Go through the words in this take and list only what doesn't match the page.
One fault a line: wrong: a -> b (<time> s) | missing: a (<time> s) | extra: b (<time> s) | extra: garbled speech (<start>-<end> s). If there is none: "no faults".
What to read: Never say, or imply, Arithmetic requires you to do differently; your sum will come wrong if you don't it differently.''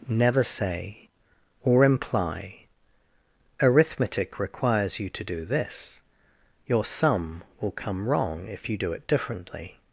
wrong: differently -> this (5.4 s)
wrong: don't -> do (8.8 s)